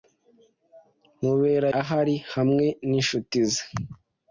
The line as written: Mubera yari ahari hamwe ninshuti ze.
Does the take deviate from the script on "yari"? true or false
true